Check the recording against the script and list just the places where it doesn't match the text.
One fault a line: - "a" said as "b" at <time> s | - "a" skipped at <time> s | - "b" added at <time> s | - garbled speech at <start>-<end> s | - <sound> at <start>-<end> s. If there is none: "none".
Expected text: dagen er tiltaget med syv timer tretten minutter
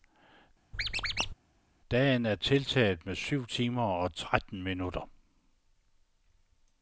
- squeak at 0.7-1.3 s
- "og" added at 3.8 s